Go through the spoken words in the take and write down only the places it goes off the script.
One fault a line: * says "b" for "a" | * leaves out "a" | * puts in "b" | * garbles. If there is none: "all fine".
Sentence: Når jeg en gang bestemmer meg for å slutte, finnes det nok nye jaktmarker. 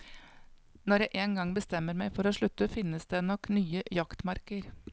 all fine